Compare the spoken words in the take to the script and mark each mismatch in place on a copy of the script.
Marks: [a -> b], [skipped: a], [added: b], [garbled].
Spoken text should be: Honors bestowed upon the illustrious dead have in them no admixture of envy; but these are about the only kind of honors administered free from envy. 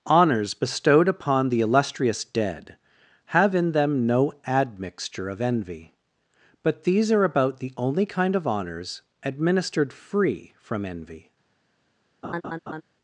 Honors bestowed upon the illustrious dead have in them no admixture of envy; but these are about the only kind of honors administered free from envy.